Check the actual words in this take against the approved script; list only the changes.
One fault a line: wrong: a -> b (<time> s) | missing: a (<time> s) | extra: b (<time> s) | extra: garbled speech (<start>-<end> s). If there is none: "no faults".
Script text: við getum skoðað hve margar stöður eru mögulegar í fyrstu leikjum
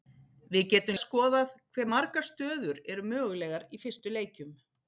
no faults